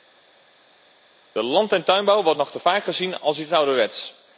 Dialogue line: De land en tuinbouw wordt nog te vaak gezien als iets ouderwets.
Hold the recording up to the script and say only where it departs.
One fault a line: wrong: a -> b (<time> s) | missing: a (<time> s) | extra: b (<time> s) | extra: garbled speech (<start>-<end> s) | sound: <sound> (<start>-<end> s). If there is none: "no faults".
no faults